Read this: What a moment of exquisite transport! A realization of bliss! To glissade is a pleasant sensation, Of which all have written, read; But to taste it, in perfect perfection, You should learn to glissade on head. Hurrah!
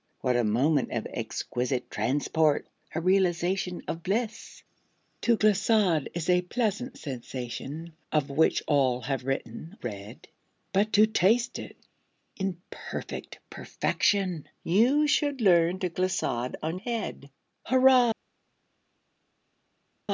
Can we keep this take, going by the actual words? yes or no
yes